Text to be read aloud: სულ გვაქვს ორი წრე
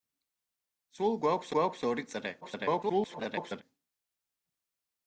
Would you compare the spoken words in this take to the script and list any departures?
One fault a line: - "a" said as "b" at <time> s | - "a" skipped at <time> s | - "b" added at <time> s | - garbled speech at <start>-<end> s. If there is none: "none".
- "გვაქვს" added at 1.6 s
- garbled speech at 2.4-3.6 s